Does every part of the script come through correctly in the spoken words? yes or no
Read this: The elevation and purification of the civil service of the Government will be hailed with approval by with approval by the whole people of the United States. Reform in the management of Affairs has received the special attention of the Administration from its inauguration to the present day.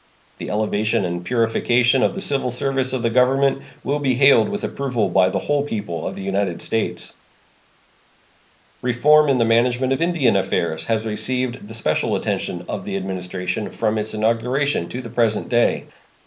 no